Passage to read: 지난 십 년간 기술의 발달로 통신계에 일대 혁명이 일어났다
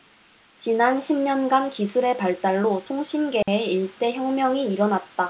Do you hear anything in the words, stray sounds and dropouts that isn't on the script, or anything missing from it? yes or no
yes